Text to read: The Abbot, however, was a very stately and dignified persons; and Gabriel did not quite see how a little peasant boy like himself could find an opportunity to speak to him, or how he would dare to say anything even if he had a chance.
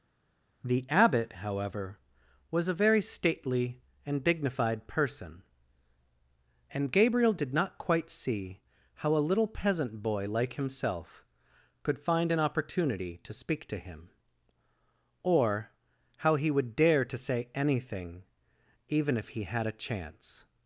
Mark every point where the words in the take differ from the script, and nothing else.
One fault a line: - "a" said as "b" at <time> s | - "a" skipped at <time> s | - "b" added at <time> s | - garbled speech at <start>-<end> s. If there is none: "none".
- "persons" said as "person" at 4.9 s